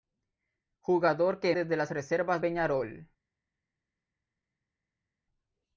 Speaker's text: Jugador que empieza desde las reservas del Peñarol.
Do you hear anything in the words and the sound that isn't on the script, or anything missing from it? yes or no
yes